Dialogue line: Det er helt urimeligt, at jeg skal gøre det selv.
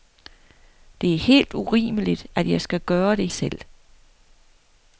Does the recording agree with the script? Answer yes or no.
yes